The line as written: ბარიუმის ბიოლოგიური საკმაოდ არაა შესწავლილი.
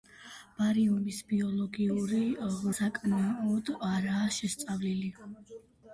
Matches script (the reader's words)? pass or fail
pass